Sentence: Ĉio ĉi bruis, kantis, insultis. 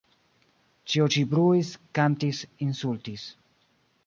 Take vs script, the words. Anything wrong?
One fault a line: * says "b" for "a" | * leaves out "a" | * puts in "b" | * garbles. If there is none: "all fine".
all fine